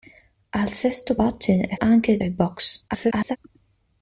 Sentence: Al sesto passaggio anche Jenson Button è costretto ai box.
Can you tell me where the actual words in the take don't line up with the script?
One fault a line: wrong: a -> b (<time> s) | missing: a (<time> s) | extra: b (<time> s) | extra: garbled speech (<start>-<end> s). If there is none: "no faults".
missing: passaggio anche Jenson (1.1 s)
wrong: costretto -> anche (1.8 s)
extra: garbled speech (2.9-3.4 s)